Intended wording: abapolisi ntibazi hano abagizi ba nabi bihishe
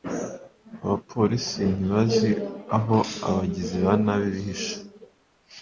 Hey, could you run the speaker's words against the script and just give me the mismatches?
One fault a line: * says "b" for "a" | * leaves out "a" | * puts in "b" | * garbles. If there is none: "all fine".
* says "aho" for "hano"